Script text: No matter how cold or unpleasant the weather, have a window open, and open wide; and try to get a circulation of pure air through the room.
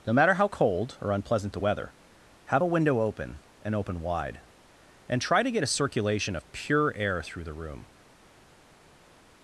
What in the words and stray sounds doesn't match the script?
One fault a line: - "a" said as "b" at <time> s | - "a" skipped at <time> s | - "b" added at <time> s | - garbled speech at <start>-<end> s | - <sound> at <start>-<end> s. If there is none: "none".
none